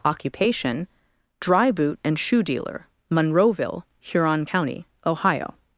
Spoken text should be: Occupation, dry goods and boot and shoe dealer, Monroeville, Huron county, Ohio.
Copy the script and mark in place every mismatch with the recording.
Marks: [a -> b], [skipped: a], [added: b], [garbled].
Occupation, dry [skipped: goods and] boot and shoe dealer, Monroeville, Huron county, Ohio.